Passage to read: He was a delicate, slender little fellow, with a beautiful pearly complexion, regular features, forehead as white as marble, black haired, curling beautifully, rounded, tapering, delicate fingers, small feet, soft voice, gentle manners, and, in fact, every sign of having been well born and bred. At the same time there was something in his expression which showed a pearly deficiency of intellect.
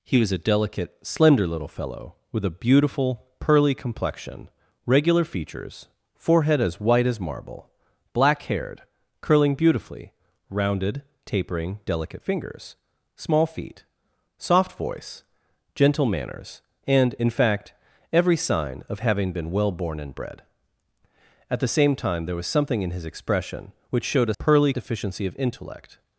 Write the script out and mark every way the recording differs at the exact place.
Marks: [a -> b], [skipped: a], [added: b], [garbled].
He was a delicate, slender little fellow, with a beautiful pearly complexion, regular features, forehead as white as marble, black haired, curling beautifully, rounded, tapering, delicate fingers, small feet, soft voice, gentle manners, and, in fact, every sign of having been well born and bred. At the same time there was something in his expression which showed a pearly deficiency of intellect.